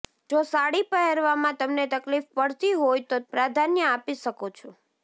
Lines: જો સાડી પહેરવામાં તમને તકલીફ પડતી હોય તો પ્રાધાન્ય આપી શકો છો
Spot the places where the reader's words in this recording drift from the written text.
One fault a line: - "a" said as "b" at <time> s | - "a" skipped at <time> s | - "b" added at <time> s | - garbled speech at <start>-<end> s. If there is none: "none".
none